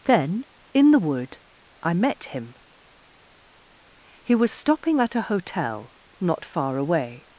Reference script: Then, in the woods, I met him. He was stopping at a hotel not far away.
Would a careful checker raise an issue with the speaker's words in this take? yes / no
yes